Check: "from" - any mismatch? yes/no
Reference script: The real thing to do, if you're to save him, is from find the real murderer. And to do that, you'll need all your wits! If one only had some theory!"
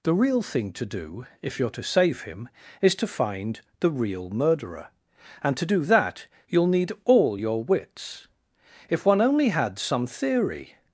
yes